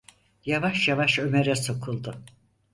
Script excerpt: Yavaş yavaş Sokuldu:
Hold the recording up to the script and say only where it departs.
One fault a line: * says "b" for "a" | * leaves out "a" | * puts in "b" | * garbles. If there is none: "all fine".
* puts in "Ömer'e"